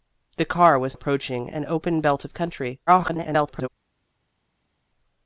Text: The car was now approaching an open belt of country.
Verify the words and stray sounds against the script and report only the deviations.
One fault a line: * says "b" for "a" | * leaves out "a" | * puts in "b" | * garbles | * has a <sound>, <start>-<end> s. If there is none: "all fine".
* leaves out "now"
* garbles